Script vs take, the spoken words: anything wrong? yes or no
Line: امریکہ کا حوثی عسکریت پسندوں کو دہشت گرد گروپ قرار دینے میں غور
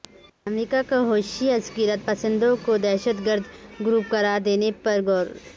yes